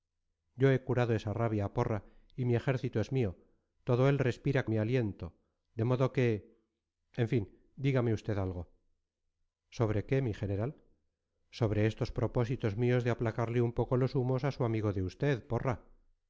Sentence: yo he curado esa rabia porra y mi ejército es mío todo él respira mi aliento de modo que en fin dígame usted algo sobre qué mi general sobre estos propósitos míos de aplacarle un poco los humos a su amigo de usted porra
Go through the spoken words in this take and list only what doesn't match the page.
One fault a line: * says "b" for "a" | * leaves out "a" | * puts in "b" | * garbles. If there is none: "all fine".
all fine